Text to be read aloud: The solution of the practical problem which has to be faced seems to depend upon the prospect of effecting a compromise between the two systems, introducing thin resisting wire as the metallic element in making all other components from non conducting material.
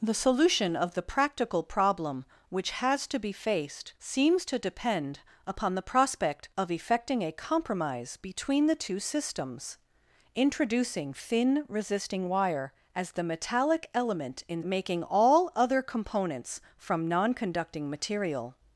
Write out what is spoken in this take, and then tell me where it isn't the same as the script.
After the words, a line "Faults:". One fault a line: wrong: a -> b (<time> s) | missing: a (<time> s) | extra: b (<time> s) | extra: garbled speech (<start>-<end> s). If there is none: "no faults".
The solution of the practical problem which has to be faced seems to depend upon the prospect of effecting a compromise between the two systems, introducing thin resisting wire as the metallic element in making all other components from non conducting material.
Faults:
no faults